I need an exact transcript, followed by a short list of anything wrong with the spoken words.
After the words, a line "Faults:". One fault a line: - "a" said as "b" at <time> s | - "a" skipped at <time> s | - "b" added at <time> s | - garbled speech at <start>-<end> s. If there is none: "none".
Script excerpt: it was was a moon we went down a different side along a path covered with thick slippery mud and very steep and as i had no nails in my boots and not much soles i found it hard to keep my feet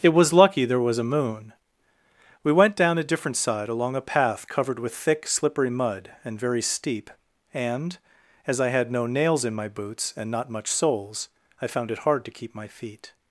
it was lucky there was a moon we went down a different side along a path covered with thick slippery mud and very steep and as i had no nails in my boots and not much soles i found it hard to keep my feet
Faults:
- "lucky there" added at 0.3 s